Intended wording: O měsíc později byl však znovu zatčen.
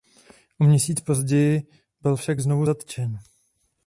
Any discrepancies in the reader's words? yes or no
no